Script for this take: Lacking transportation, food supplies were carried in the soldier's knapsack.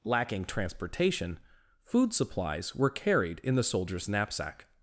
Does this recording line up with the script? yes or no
yes